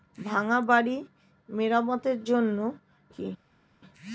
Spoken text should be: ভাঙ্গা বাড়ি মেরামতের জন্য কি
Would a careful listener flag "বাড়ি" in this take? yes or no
no